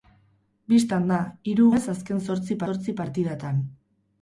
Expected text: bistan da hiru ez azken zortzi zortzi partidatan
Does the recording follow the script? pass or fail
pass